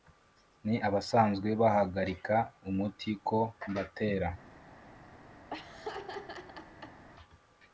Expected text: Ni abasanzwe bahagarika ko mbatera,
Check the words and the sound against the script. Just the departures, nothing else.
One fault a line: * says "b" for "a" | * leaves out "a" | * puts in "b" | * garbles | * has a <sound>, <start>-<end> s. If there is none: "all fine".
* puts in "umuti"
* has a laugh, 5.5-7.0 s